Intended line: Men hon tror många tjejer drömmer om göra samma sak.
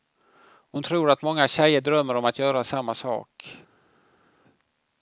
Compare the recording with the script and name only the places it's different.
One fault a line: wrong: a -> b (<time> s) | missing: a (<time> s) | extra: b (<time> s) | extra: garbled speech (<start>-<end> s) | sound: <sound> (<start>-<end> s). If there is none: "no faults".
wrong: Men -> Och (0.4 s)
extra: att (1.1 s)
extra: att (2.3 s)